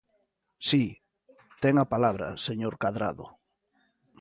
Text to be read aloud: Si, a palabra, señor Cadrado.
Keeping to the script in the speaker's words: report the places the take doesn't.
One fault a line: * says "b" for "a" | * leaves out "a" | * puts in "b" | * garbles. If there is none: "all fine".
* puts in "ten"